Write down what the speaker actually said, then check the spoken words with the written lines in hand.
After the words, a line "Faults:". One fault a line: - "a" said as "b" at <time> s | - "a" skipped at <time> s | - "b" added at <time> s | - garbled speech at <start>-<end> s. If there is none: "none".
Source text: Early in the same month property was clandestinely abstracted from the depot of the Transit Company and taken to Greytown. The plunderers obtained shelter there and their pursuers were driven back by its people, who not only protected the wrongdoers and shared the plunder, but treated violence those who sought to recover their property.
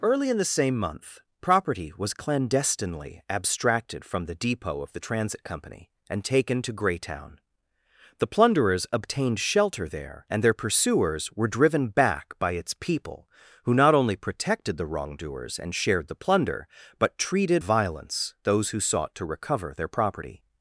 Early in the same month property was clandestinely abstracted from the depot of the Transit Company and taken to Greytown. The plunderers obtained shelter there and their pursuers were driven back by its people, who not only protected the wrongdoers and shared the plunder, but treated violence those who sought to recover their property.
Faults:
none